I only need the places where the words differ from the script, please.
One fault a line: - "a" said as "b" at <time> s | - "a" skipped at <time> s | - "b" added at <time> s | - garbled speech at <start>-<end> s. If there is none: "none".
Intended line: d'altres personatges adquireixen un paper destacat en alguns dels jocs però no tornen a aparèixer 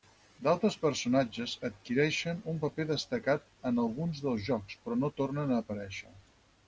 none